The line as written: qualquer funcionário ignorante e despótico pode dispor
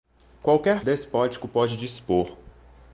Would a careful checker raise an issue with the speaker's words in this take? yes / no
yes